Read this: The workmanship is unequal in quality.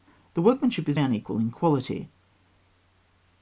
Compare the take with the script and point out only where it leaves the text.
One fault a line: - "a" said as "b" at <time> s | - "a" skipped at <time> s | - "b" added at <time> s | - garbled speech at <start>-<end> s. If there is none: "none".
none